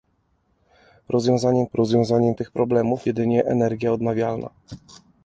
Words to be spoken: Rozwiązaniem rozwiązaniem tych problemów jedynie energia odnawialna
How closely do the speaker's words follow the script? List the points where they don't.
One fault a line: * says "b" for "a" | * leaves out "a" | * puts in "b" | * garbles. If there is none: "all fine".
all fine